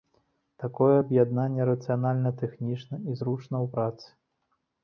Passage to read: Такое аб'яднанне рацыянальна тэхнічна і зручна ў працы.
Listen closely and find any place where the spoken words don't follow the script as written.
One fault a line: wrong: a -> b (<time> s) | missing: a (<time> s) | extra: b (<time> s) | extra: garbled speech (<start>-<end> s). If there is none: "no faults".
no faults